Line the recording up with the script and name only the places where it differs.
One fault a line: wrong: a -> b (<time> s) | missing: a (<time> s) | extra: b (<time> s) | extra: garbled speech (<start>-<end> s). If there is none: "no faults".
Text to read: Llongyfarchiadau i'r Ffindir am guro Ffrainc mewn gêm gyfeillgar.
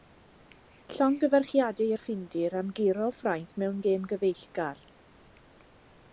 no faults